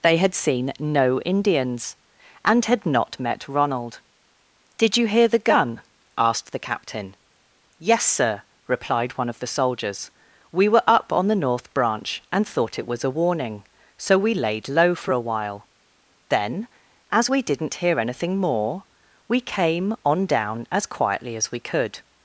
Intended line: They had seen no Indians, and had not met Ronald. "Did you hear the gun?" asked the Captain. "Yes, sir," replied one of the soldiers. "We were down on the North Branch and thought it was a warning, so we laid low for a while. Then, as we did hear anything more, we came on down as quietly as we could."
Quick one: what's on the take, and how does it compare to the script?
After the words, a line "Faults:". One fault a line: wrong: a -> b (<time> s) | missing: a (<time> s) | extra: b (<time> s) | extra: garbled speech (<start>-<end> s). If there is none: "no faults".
They had seen no Indians, and had not met Ronald. "Did you hear the gun?" asked the Captain. "Yes, sir," replied one of the soldiers. "We were up on the North Branch and thought it was a warning, so we laid low for a while. Then, as we didn't hear anything more, we came on down as quietly as we could."
Faults:
wrong: down -> up (10.9 s)
wrong: did -> didn't (17.4 s)